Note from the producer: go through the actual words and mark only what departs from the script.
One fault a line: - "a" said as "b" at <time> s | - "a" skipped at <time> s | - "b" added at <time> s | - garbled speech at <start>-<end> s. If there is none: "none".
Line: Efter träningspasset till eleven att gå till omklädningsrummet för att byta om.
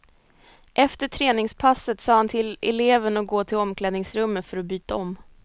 - "sa han" added at 2.0 s